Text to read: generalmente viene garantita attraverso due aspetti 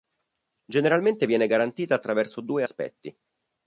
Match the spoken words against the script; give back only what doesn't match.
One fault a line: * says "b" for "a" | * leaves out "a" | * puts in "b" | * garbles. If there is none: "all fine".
all fine